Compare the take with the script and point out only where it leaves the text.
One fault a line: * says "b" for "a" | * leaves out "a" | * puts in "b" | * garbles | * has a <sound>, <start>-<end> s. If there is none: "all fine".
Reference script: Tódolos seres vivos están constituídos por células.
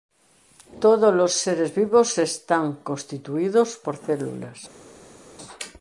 all fine